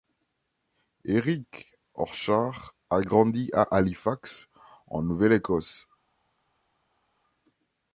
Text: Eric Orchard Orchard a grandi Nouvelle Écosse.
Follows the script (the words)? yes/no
no